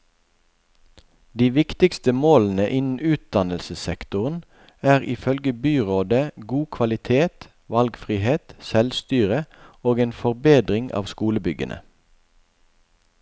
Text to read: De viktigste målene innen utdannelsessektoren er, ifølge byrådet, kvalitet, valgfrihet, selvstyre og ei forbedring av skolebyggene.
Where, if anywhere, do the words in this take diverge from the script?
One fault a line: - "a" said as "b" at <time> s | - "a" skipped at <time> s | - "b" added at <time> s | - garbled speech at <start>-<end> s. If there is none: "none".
- "god" added at 6.5 s
- "ei" said as "en" at 10.0 s